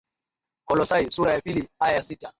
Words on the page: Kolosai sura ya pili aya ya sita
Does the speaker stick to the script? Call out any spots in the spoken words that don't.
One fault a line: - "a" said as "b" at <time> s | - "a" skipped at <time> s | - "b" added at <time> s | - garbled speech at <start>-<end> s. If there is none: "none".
none